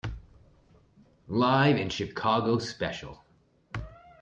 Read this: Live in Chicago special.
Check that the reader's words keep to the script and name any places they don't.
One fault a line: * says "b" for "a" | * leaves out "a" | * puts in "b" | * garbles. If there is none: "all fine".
all fine